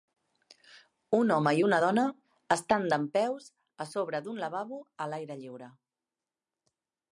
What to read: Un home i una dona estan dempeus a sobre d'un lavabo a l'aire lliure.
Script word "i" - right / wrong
right